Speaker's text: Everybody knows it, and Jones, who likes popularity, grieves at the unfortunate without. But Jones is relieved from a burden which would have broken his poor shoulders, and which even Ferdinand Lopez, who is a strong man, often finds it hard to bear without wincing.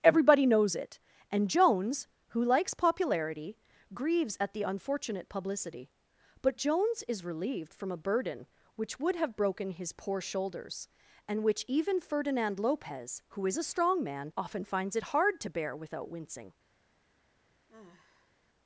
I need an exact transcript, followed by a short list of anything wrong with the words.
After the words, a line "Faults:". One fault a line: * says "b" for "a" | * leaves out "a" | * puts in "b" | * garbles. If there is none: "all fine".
Everybody knows it, and Jones, who likes popularity, grieves at the unfortunate publicity. But Jones is relieved from a burden which would have broken his poor shoulders, and which even Ferdinand Lopez, who is a strong man, often finds it hard to bear without wincing.
Faults:
* says "publicity" for "without"